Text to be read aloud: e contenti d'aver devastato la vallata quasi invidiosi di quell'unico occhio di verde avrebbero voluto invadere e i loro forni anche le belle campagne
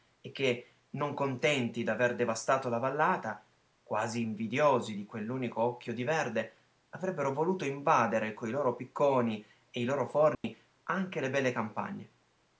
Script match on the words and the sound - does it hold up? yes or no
no